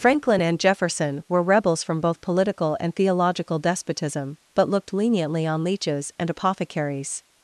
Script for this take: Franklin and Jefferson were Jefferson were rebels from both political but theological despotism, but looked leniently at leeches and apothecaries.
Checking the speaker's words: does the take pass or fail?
fail